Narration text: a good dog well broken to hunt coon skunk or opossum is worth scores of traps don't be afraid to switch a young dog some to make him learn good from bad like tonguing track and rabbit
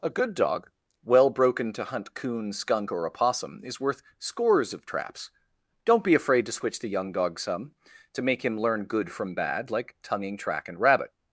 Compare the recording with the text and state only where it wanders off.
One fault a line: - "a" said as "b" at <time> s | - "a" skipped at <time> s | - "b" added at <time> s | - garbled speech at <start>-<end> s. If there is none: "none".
- "a" said as "the" at 6.8 s